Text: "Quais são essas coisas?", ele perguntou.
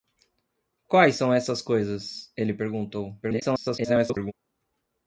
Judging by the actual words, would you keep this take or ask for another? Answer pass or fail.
fail